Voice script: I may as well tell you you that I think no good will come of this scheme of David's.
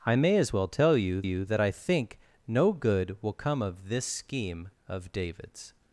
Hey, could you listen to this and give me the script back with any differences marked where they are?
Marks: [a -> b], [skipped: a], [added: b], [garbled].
I may as well tell you you that I think no good will come of this scheme of David's.